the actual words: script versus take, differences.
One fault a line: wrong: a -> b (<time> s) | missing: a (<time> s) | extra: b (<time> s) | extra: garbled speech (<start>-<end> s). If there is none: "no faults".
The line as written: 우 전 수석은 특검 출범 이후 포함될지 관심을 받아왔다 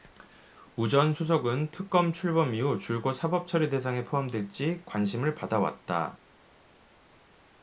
extra: 줄곧 사법처리 대상에 (2.8 s)